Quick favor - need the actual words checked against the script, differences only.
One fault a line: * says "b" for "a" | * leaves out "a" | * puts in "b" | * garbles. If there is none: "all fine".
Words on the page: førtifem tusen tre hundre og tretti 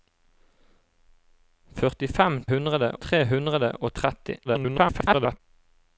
* says "hundre" for "tusen"
* garbles